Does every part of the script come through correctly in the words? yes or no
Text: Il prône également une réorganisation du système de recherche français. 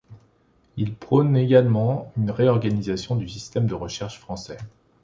yes